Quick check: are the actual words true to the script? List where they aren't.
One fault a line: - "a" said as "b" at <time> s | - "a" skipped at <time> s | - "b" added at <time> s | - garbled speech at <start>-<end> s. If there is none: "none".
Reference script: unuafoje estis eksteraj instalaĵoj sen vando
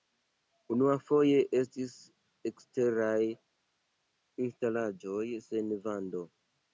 none